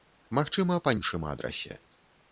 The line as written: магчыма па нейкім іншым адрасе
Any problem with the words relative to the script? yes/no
yes